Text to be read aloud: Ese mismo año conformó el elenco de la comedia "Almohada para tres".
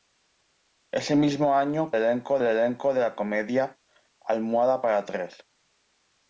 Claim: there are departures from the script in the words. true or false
true